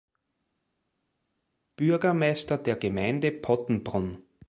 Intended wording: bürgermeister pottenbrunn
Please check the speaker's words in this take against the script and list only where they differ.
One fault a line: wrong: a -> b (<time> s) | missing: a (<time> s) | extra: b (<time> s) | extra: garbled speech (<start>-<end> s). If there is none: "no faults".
extra: der gemeinde (2.6 s)